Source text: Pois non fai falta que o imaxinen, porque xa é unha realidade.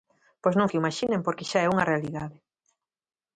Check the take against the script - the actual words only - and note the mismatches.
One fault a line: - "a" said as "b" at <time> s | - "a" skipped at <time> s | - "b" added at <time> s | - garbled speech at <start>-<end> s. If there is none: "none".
- "fai falta" skipped at 0.7 s